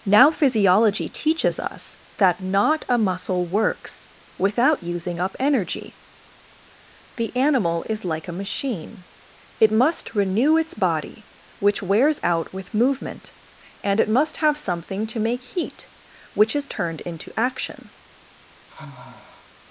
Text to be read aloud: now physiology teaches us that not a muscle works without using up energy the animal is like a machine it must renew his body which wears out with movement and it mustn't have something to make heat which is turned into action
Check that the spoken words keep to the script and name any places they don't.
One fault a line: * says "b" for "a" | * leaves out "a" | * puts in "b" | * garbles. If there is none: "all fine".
* says "its" for "his"
* says "must" for "mustn't"